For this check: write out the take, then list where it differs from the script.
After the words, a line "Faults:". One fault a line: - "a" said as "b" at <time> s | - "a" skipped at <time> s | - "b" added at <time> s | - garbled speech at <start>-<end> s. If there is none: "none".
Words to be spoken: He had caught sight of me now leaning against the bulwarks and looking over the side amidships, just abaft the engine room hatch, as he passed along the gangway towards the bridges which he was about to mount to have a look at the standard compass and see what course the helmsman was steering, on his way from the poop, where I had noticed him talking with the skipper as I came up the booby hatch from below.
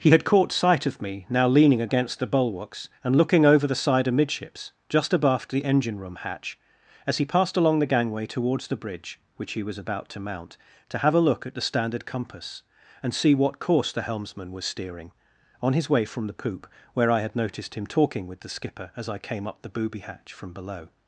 He had caught sight of me now leaning against the bulwarks and looking over the side amidships, just abaft the engine room hatch, as he passed along the gangway towards the bridge which he was about to mount to have a look at the standard compass and see what course the helmsman was steering, on his way from the poop, where I had noticed him talking with the skipper as I came up the booby hatch from below.
Faults:
- "bridges" said as "bridge" at 8.8 s